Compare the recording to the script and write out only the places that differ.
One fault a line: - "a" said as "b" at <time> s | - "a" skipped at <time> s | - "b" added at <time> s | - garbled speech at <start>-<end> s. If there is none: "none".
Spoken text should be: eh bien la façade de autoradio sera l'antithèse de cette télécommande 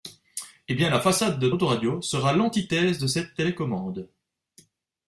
none